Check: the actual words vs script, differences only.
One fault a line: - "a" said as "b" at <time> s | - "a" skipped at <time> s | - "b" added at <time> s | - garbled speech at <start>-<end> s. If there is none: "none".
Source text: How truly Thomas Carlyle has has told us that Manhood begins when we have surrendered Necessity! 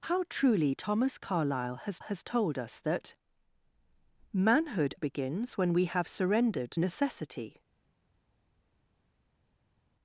none